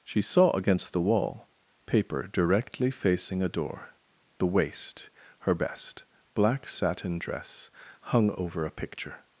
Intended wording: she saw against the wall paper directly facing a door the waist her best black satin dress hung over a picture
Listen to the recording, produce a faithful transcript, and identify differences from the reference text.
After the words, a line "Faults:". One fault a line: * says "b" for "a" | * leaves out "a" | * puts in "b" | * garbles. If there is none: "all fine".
she saw against the wall paper directly facing a door the waist her best black satin dress hung over a picture
Faults:
all fine